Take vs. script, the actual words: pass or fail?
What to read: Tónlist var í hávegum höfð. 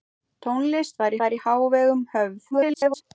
fail